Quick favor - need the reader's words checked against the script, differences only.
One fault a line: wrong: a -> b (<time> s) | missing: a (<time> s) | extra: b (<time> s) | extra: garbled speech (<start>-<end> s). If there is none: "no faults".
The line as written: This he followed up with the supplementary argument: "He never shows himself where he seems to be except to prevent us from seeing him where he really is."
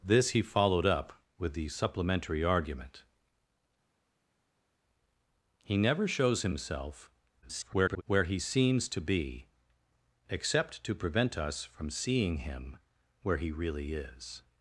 extra: garbled speech (7.4-8.0 s)